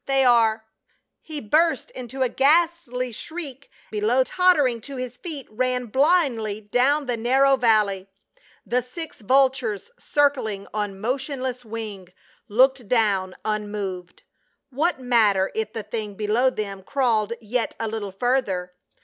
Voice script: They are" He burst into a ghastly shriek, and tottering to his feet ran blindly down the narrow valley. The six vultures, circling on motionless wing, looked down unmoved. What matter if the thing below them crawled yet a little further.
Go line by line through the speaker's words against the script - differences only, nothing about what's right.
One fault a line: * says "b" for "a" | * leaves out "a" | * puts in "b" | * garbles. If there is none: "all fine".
* says "below" for "and"